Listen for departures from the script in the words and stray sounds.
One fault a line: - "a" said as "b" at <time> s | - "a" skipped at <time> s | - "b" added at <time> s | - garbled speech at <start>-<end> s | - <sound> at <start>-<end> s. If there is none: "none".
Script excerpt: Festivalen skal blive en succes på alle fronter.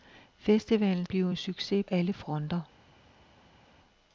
- "skal" skipped at 1.1 s
- "på" skipped at 1.8 s